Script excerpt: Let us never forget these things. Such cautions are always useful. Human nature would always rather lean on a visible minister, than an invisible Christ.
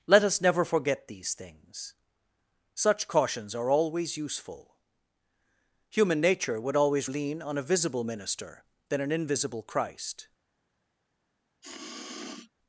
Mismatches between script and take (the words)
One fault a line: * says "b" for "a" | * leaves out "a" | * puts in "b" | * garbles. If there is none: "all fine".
* leaves out "rather"